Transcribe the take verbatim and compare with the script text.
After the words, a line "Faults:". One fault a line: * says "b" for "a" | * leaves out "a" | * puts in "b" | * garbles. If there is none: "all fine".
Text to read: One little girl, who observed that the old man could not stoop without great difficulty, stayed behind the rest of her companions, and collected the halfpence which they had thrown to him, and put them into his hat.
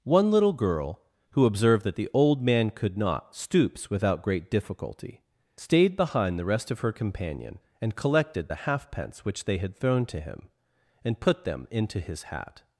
One little girl, who observed that the old man could not stoops without great difficulty, stayed behind the rest of her companion, and collected the halfpence which they had thrown to him, and put them into his hat.
Faults:
* says "stoops" for "stoop"
* says "companion" for "companions"